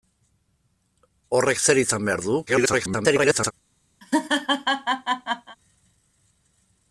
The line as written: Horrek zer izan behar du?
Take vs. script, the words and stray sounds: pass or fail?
fail